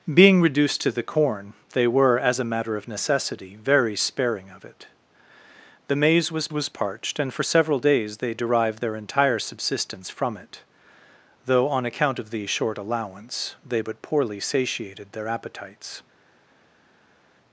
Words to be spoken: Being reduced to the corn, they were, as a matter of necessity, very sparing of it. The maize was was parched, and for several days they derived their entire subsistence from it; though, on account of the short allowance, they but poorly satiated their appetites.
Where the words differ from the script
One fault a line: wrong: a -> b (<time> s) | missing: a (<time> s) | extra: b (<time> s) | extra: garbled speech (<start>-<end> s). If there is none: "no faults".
no faults